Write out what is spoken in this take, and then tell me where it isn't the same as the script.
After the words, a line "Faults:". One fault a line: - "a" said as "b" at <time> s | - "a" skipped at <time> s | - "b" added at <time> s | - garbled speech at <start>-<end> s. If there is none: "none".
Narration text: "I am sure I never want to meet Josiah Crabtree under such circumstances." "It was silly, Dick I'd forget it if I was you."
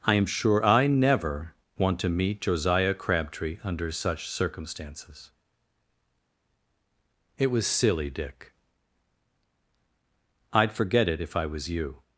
"I am sure I never want to meet Josiah Crabtree under such circumstances." "It was silly, Dick I'd forget it if I was you."
Faults:
none